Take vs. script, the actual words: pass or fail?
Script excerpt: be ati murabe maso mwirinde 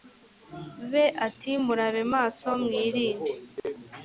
pass